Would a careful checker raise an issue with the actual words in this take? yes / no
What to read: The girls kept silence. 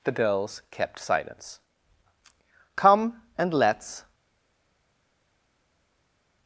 yes